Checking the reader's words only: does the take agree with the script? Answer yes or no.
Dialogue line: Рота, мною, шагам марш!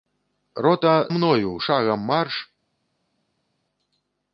yes